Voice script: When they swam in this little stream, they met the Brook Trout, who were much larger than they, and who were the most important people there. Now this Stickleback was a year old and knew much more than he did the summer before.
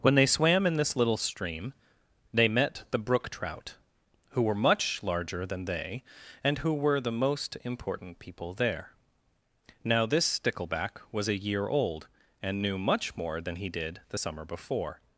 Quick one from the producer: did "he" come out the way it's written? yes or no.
yes